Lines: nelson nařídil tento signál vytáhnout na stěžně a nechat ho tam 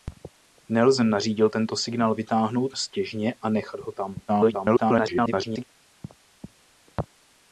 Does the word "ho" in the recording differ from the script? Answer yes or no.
no